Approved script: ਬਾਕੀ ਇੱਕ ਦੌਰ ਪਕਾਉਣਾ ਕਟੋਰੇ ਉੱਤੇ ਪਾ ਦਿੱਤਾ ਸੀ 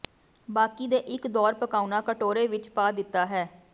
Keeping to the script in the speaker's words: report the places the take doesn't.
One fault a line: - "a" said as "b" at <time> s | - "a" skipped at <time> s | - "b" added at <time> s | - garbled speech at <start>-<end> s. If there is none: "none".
- "ਦੇ" added at 0.9 s
- "ਉੱਤੇ" said as "ਵਿੱਚ" at 2.5 s
- "ਸੀ" said as "ਹੈ" at 3.3 s